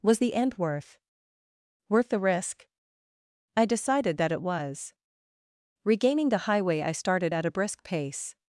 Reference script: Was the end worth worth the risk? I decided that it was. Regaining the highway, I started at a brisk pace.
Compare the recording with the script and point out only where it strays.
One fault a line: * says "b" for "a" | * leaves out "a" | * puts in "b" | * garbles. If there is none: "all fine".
all fine